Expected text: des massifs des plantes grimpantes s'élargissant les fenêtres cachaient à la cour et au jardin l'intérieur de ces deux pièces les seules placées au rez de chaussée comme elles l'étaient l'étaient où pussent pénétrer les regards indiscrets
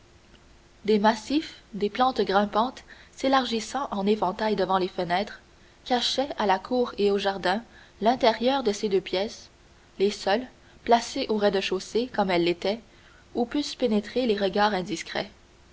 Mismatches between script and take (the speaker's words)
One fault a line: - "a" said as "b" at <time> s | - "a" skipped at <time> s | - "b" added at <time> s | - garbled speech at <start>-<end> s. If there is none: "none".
- "en éventail devant" added at 3.9 s
- "l'étaient" skipped at 12.8 s